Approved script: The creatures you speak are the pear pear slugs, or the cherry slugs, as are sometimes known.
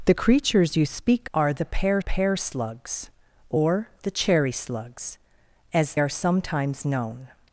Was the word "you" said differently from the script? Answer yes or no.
no